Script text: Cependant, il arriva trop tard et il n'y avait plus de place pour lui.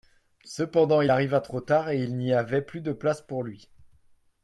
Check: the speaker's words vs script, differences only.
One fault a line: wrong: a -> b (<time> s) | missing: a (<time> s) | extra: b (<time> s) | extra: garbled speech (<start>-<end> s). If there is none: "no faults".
no faults